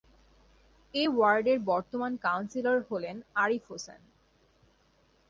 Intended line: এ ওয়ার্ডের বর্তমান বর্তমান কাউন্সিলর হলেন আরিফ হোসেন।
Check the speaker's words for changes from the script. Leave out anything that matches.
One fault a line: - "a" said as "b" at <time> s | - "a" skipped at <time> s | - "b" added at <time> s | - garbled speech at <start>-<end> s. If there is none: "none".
- "বর্তমান" skipped at 2.1 s